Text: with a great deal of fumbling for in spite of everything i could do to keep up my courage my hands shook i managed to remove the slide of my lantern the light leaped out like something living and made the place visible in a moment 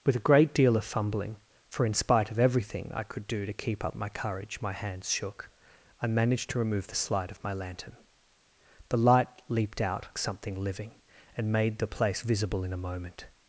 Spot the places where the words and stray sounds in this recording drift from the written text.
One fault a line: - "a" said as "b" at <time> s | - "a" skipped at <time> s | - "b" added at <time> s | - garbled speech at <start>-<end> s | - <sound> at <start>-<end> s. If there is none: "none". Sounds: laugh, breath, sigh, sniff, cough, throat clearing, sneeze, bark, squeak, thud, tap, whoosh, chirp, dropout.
- "like" skipped at 10.1 s